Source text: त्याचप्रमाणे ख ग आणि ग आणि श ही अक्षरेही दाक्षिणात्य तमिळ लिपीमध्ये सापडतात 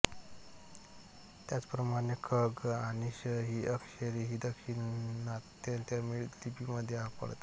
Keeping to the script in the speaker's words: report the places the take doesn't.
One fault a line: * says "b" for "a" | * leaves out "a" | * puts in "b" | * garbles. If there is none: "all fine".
* leaves out "ग आणि"